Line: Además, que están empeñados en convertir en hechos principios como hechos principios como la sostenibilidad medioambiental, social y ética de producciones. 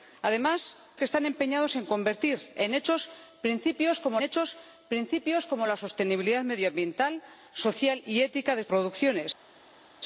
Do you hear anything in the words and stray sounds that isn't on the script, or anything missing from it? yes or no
no